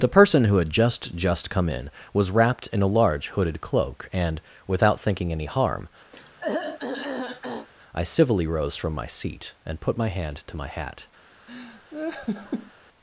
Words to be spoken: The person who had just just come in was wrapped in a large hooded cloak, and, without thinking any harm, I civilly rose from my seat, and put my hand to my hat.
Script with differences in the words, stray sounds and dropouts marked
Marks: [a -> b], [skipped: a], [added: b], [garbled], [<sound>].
The person who had just just come in was wrapped in a large hooded cloak, and, without thinking any harm, [throat clearing] I civilly rose from my seat, and put my hand to my hat. [laugh]